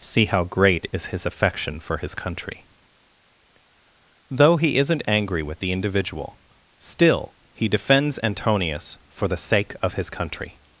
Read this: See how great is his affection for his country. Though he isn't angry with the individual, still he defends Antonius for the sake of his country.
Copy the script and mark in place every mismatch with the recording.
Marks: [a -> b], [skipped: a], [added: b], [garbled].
See how great is his affection for his country. Though he isn't angry with the individual, still he defends Antonius for the sake of his country.